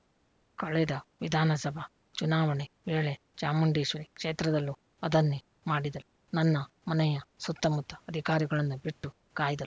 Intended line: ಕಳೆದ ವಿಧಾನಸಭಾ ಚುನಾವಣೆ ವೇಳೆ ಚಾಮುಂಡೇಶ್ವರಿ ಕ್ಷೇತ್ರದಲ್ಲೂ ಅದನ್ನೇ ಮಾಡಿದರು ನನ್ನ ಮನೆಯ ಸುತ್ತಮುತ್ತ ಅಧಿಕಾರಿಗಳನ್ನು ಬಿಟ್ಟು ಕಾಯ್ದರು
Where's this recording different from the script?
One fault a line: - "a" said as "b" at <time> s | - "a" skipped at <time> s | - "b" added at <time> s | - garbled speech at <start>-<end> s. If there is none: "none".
none